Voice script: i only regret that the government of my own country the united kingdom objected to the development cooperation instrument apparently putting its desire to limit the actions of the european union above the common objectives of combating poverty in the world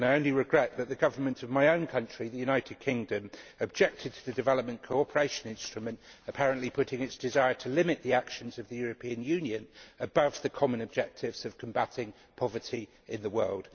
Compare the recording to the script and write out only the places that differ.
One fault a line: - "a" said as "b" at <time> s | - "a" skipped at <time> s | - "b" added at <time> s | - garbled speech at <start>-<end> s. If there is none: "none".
none